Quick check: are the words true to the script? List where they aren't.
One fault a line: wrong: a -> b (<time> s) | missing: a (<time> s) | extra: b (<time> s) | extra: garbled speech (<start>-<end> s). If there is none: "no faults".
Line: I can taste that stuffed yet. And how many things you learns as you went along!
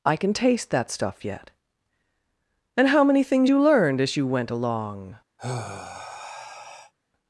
wrong: stuffed -> stuff (0.9 s)
wrong: learns -> learned (3.6 s)